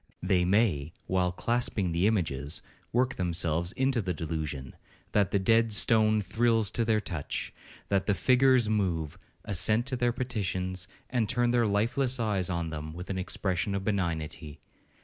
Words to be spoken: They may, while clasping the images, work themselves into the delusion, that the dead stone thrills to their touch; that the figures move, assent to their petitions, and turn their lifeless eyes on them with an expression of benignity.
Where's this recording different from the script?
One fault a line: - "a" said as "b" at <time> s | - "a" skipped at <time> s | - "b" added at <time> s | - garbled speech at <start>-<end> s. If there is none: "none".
none